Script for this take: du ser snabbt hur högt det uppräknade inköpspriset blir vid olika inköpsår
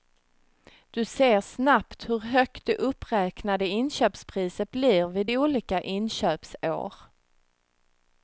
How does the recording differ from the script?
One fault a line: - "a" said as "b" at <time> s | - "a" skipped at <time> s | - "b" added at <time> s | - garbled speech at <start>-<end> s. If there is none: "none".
none